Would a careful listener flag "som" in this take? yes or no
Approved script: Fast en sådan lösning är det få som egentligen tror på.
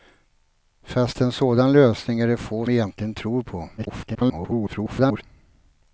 yes